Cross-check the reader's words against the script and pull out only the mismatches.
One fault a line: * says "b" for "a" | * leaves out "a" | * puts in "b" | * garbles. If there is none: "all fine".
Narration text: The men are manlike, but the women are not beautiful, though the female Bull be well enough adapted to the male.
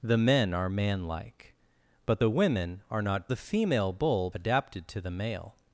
* leaves out "beautiful though"
* leaves out "be well enough"